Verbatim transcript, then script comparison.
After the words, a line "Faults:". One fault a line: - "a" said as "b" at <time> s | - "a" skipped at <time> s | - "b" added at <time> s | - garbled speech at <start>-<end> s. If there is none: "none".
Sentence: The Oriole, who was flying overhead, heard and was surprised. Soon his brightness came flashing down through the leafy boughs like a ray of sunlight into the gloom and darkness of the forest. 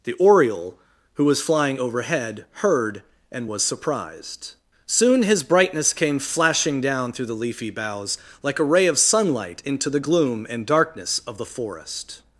The Oriole, who was flying overhead, heard and was surprised. Soon his brightness came flashing down through the leafy boughs like a ray of sunlight into the gloom and darkness of the forest.
Faults:
none